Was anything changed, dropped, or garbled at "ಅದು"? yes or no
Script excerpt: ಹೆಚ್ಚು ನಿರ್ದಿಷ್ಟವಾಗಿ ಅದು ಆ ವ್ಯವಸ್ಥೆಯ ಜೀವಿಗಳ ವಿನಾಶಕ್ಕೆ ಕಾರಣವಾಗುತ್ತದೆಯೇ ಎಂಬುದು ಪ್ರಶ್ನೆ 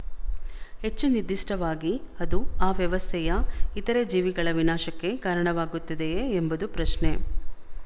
no